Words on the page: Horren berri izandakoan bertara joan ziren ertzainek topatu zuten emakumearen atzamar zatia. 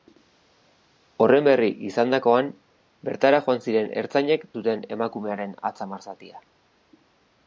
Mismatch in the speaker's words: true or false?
true